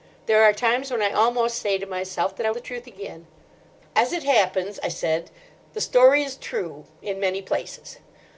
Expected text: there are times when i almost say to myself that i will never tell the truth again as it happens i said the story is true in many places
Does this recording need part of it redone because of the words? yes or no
yes